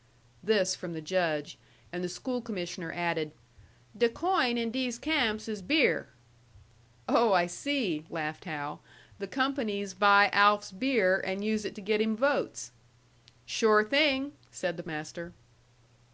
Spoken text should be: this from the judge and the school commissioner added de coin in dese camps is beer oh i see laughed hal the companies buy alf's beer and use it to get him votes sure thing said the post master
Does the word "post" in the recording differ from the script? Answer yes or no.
yes